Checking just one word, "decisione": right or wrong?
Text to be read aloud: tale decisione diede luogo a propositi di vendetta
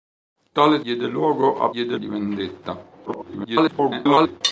wrong